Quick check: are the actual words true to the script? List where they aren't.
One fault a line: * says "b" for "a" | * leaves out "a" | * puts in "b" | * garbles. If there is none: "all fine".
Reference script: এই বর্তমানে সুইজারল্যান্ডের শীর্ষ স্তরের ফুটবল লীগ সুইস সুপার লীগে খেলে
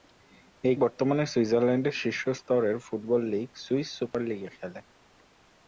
all fine